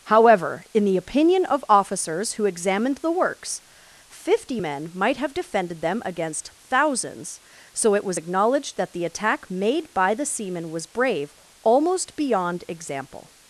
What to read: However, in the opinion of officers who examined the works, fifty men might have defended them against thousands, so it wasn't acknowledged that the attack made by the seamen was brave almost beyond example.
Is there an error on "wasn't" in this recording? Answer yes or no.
yes